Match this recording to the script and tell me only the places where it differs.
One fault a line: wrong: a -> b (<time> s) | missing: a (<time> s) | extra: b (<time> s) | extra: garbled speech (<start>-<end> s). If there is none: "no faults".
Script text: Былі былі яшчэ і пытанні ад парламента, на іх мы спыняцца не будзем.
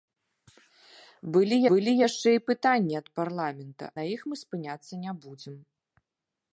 no faults